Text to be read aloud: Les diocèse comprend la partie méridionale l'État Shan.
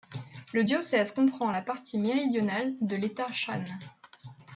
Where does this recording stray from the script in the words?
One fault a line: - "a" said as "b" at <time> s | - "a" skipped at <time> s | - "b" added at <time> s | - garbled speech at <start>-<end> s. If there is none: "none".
- "Les" said as "Le" at 0.5 s
- "de" added at 2.8 s